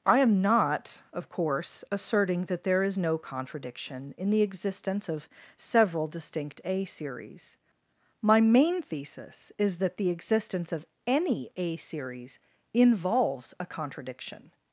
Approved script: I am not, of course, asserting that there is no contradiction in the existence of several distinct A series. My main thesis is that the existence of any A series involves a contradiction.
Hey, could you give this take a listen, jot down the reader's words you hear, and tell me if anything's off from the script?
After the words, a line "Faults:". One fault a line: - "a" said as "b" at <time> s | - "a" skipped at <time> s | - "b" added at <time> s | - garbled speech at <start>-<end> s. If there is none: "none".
I am not, of course, asserting that there is no contradiction in the existence of several distinct A series. My main thesis is that the existence of any A series involves a contradiction.
Faults:
none